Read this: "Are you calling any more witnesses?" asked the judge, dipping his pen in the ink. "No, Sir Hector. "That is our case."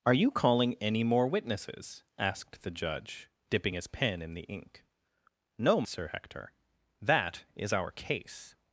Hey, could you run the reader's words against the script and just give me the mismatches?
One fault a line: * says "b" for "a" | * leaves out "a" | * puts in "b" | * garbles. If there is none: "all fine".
all fine